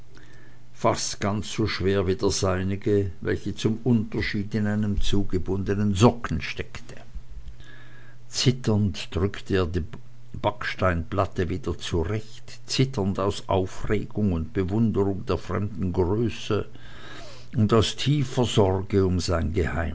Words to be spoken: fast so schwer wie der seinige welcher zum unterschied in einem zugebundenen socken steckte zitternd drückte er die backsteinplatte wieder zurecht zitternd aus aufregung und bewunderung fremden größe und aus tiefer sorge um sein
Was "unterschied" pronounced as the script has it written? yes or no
yes